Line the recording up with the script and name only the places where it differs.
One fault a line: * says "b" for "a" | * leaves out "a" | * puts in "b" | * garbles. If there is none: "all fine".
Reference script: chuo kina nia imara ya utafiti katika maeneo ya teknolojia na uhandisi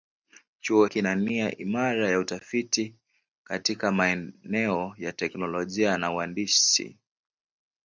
all fine